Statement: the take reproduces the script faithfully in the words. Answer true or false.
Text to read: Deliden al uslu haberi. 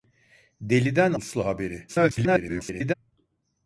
false